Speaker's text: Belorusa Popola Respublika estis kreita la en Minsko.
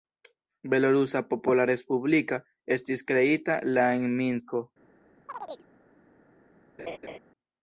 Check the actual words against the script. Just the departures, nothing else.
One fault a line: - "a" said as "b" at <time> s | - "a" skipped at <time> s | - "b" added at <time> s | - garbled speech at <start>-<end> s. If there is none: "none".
none